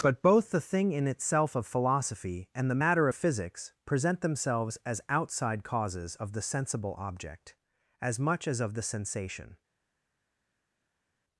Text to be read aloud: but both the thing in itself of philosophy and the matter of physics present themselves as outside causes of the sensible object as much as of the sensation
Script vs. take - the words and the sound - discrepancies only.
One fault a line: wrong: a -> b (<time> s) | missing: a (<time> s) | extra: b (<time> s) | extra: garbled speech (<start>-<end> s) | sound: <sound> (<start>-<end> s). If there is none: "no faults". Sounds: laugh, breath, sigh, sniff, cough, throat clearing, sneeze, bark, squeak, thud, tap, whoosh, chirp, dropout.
no faults